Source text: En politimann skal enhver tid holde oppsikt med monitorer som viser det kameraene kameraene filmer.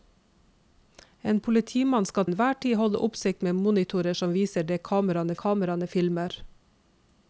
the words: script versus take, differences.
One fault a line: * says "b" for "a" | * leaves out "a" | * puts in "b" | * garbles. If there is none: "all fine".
all fine